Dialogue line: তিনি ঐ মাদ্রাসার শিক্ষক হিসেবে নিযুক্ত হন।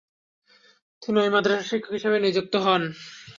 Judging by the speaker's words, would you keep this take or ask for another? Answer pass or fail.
pass